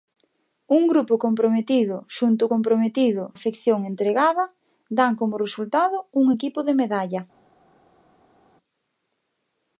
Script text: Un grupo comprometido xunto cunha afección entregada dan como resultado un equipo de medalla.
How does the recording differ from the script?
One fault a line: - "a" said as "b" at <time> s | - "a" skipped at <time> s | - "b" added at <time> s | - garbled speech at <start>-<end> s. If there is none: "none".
- "cunha" said as "comprometido" at 2.5 s